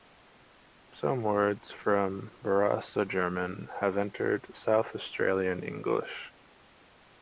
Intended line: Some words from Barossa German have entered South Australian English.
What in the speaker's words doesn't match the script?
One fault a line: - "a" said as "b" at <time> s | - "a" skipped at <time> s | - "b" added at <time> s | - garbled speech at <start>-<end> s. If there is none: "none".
none